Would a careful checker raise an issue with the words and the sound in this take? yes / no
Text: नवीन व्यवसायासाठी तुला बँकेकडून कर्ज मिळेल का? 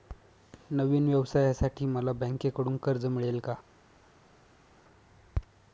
yes